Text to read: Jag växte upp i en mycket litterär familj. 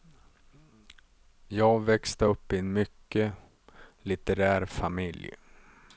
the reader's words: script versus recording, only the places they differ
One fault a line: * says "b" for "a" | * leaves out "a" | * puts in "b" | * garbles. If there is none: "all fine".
all fine